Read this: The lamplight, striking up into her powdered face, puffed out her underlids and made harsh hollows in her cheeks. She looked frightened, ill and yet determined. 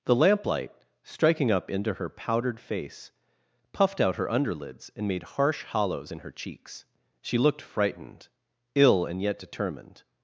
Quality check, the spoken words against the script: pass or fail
pass